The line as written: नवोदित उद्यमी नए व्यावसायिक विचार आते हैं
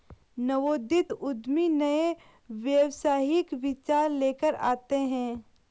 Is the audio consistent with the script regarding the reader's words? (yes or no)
no